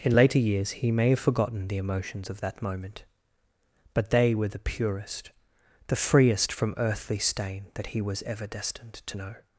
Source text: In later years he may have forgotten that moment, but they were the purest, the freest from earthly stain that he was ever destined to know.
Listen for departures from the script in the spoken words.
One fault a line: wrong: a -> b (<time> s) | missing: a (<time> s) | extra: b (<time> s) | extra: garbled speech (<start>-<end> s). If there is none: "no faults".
extra: the emotions of (1.7 s)